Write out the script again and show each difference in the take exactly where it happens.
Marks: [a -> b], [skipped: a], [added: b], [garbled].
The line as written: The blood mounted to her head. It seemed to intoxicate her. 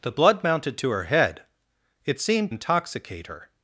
The blood mounted to her head. It seemed [skipped: to] intoxicate her.